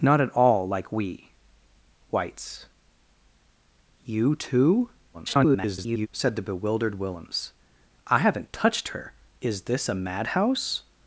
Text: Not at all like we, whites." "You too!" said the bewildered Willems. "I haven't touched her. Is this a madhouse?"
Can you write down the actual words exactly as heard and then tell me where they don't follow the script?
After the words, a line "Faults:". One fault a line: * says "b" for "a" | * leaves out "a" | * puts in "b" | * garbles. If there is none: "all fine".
Not at all like we, whites." "You too!" [garbled] said the bewildered Willems. "I haven't touched her. Is this a madhouse?"
Faults:
* garbles